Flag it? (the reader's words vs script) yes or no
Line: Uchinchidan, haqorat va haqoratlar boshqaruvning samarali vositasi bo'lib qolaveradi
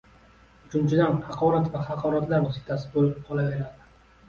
yes